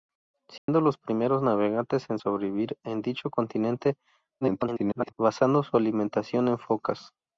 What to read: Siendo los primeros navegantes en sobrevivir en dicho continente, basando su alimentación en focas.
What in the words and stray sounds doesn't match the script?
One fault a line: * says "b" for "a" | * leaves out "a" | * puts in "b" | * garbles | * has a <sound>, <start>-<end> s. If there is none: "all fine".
* has a dropout, 0.6-0.7 s
* garbles